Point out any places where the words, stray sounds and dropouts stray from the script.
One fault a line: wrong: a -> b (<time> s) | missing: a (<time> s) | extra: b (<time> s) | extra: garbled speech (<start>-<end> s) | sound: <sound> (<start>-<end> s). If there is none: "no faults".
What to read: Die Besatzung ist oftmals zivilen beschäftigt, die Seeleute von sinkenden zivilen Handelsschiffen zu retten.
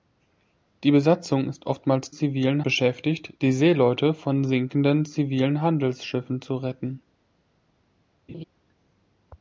sound: laugh (8.3-8.4 s)